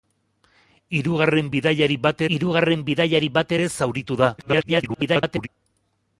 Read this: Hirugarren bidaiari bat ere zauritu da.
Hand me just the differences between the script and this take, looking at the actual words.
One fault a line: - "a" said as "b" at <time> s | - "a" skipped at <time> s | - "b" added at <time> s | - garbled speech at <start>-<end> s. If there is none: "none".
- "hirugarren bidaiari bat" added at 2.4 s
- garbled speech at 4.4-5.5 s